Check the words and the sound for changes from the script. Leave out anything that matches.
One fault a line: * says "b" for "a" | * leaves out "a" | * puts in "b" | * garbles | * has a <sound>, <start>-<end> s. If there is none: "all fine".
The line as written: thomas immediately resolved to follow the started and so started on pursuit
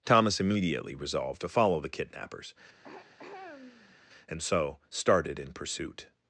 * says "kidnappers" for "started"
* has a throat clearing, 2.8-4.0 s
* says "in" for "on"